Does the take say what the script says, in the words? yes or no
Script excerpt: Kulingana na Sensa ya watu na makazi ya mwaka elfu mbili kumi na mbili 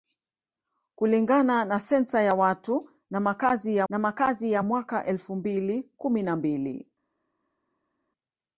no